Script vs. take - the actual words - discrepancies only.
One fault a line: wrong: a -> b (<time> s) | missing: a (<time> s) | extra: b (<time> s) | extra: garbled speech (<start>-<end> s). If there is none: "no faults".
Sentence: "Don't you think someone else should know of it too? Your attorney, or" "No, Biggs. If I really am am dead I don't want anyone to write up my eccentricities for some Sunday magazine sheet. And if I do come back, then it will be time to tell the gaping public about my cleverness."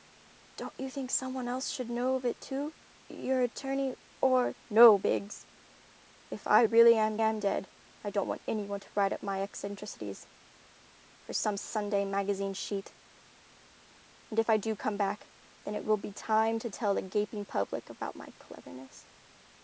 no faults